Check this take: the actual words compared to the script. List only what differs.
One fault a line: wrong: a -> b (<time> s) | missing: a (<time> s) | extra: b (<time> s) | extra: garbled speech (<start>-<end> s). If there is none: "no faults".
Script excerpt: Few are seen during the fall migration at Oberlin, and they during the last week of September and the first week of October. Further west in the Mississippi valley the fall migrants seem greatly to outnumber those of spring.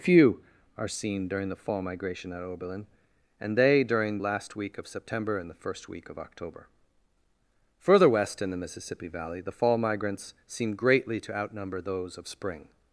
missing: the (4.2 s)